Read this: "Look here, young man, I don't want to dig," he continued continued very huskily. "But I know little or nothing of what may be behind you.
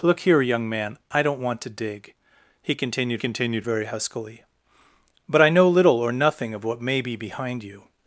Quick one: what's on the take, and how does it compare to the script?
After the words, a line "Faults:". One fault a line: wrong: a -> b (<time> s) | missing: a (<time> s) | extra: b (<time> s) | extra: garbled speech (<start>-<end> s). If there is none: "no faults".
"Look here, young man, I don't want to dig," he continued continued very huskily. "But I know little or nothing of what may be behind you.
Faults:
no faults